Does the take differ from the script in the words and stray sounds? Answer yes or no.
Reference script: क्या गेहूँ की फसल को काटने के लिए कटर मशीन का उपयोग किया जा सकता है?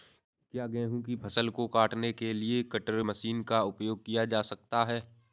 no